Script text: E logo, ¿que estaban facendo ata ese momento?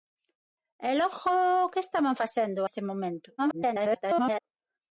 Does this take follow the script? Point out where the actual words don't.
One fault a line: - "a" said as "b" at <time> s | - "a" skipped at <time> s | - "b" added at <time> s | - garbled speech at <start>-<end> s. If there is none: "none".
- "ata" skipped at 2.6 s
- garbled speech at 3.4-4.4 s